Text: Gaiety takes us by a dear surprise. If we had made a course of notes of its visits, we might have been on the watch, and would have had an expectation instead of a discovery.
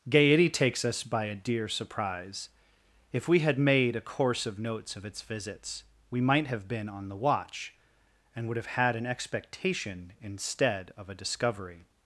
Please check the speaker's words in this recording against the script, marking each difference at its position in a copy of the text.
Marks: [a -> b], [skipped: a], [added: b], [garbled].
Gaiety takes us by a dear surprise. If we had made a course of notes of its visits, we might have been on the watch, and would have had an expectation instead of a discovery.